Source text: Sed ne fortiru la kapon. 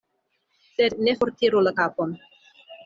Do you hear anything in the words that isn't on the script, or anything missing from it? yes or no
no